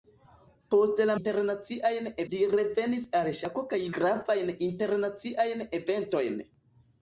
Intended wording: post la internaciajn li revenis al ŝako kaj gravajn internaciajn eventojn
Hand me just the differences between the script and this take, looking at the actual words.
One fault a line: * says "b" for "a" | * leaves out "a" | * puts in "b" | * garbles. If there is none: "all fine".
all fine